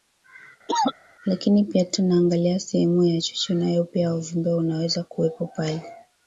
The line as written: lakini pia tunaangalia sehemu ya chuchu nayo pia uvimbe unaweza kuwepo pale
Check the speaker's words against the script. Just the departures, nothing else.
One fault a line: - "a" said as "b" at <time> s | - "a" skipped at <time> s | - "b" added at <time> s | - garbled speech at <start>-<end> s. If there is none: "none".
none